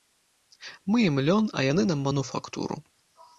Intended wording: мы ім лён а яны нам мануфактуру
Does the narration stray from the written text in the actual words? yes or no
no